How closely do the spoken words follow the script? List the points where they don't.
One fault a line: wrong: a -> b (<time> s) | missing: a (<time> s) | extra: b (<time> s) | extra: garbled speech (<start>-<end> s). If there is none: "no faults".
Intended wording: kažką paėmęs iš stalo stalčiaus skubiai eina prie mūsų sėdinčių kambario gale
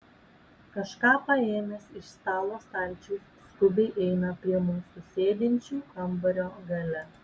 no faults